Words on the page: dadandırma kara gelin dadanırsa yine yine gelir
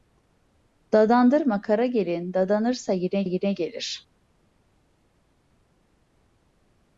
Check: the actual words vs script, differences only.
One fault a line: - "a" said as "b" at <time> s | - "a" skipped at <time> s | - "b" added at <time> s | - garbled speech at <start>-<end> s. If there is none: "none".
none